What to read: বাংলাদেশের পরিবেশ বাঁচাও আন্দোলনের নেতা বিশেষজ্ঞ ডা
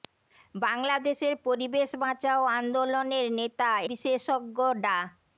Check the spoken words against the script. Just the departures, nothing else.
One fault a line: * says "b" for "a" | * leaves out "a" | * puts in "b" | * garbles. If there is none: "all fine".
all fine